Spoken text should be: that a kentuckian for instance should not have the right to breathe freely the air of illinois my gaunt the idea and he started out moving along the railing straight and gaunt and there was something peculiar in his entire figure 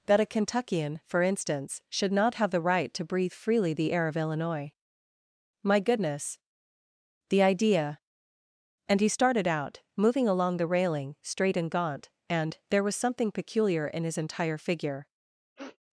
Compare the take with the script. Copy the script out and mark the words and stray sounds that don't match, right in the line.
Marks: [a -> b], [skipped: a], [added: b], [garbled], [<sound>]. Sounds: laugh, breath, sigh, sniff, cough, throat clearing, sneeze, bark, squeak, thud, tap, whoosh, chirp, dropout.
that a kentuckian for instance should not have the right to breathe freely the air of illinois my [gaunt -> goodness] the idea and he started out moving along the railing straight and gaunt and there was something peculiar in his entire figure [sniff]